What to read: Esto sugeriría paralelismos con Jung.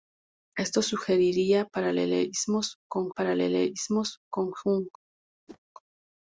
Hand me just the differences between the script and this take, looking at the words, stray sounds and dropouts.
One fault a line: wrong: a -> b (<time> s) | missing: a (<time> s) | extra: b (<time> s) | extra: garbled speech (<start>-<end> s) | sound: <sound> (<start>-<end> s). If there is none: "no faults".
extra: paralelismos con (3.1 s)
sound: whoosh (5.5-5.6 s)